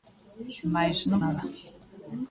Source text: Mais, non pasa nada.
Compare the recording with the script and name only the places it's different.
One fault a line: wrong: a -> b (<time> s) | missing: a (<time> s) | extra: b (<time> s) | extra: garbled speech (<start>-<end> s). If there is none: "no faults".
missing: pasa (1.2 s)